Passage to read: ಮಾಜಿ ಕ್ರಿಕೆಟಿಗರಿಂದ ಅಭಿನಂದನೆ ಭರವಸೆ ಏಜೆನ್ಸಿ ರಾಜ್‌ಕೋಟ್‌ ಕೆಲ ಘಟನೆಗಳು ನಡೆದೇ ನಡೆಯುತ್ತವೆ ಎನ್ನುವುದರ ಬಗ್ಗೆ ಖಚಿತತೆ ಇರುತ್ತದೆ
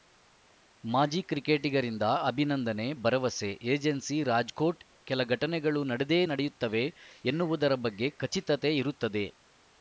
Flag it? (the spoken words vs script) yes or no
no